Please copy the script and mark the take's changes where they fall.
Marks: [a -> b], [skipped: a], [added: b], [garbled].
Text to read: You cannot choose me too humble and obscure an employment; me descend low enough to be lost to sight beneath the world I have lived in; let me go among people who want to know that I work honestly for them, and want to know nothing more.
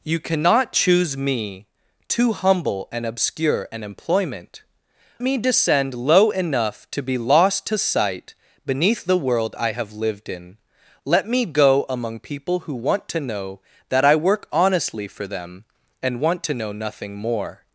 You cannot choose me too humble and obscure an employment; me descend low enough to be lost to sight beneath the world I have lived in; let me go among people who want to know that I work honestly for them, and want to know nothing more.